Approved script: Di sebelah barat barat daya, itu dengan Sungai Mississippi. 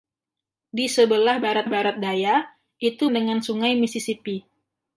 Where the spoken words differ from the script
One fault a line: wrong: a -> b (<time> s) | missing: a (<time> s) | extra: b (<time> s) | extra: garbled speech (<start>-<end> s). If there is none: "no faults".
no faults